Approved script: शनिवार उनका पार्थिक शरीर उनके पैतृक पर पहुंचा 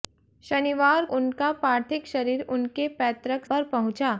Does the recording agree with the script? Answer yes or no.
yes